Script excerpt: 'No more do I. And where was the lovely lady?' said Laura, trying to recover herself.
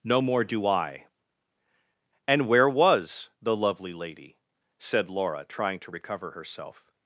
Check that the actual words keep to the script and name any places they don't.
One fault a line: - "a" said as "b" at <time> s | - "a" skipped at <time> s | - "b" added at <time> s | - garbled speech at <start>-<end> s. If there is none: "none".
none